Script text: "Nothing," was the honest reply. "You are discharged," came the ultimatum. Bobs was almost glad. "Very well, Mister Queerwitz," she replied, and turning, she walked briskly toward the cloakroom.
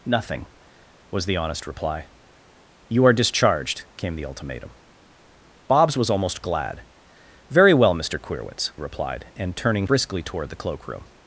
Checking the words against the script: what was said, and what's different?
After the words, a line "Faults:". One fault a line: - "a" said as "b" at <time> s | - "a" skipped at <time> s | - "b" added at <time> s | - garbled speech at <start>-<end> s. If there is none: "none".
"Nothing," was the honest reply. "You are discharged," came the ultimatum. Bobs was almost glad. "Very well, Mister Queerwitz," replied, and turning, briskly toward the cloakroom.
Faults:
- "she" skipped at 8.7 s
- "she walked" skipped at 9.9 s